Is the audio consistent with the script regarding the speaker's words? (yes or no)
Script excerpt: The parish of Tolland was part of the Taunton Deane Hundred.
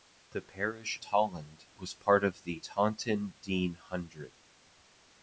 no